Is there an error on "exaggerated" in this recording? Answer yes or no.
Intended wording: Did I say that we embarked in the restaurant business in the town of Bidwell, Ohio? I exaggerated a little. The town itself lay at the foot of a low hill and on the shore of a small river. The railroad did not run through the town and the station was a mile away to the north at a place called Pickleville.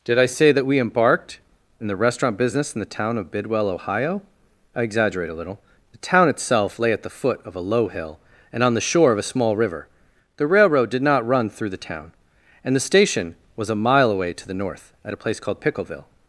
yes